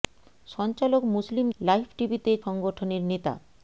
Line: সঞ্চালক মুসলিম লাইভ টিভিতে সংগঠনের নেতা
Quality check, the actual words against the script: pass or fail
pass